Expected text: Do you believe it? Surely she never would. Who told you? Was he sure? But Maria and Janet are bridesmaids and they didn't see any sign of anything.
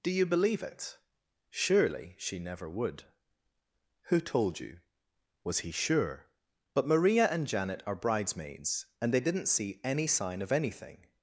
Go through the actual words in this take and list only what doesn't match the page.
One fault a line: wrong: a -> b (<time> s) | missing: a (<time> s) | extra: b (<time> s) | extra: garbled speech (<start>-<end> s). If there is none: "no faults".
no faults